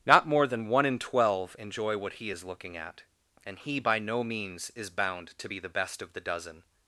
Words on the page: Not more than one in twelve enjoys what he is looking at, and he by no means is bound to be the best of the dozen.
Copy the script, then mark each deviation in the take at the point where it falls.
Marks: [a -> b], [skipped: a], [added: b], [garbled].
Not more than one in twelve [enjoys -> enjoy] what he is looking at, and he by no means is bound to be the best of the dozen.